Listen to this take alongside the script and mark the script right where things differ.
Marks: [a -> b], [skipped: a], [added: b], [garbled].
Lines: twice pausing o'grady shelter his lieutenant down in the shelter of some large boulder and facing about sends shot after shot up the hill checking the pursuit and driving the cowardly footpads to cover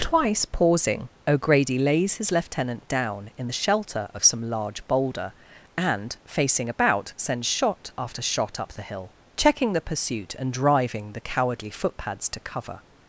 twice pausing o'grady [shelter -> lays] his lieutenant down in the shelter of some large boulder and facing about sends shot after shot up the hill checking the pursuit and driving the cowardly footpads to cover